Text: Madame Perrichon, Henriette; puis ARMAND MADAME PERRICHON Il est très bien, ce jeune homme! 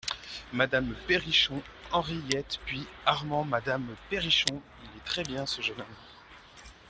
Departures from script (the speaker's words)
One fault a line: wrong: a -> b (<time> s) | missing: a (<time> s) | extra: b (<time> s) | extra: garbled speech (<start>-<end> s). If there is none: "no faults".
no faults